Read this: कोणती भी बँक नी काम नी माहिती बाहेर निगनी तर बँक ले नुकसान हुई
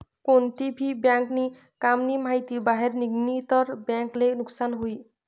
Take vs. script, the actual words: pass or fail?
pass